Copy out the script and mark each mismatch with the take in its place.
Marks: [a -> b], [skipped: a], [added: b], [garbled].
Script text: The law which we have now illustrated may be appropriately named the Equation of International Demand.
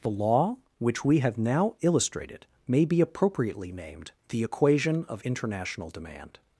The law which we have now illustrated may be appropriately named the Equation of International Demand.